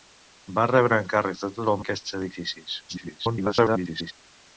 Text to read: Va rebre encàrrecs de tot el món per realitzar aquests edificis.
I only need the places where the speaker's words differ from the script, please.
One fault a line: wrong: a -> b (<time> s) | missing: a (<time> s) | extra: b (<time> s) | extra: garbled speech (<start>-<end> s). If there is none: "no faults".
missing: món per realitzar (1.8 s)
extra: garbled speech (2.9-4.1 s)